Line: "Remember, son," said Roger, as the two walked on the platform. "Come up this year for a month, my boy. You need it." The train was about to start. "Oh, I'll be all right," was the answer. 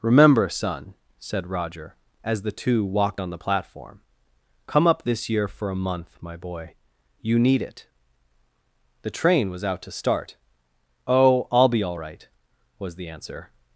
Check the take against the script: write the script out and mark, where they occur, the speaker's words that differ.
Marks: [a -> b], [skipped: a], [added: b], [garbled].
"Remember, son," said Roger, as the two walked on the platform. "Come up this year for a month, my boy. You need it." The train was [about -> out] to start. "Oh, I'll be all right," was the answer.